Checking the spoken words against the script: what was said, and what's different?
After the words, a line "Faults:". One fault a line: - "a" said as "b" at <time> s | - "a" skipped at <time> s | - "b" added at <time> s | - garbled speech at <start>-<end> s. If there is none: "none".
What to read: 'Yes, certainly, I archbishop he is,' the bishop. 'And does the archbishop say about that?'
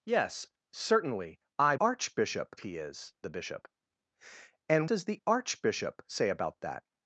'Yes, certainly, I archbishop he is,' the bishop. 'And does the archbishop say about that?'
Faults:
none